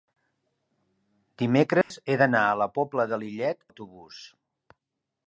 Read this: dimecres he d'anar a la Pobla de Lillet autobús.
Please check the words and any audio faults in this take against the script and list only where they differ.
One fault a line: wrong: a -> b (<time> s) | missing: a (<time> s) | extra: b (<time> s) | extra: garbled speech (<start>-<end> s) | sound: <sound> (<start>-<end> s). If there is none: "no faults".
sound: dropout (1.8-1.9 s)